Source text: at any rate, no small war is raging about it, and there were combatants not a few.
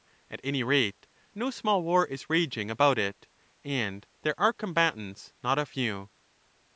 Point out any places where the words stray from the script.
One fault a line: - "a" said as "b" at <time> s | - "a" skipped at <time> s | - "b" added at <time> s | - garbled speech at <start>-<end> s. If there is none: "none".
- "were" said as "are" at 4.4 s